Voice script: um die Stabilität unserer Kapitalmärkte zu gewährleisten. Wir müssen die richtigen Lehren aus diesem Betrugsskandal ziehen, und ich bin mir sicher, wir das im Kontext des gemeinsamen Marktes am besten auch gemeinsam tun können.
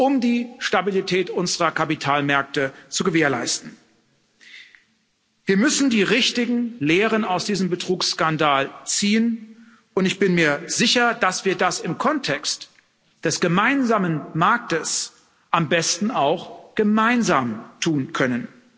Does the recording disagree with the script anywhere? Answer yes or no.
yes